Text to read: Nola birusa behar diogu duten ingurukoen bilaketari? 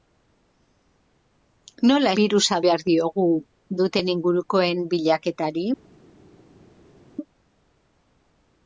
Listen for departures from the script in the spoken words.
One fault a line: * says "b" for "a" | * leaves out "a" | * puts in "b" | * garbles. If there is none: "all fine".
all fine